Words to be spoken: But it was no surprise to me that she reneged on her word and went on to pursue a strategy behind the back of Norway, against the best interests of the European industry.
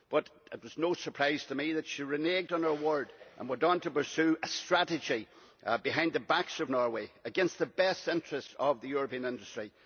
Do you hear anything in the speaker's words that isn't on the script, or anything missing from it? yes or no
no